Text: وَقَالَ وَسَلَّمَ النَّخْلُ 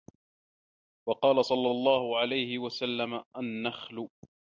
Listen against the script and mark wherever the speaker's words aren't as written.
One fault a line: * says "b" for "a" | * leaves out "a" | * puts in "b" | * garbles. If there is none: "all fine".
* puts in "صَلَّى اللَّهُ عَلَيْهِ"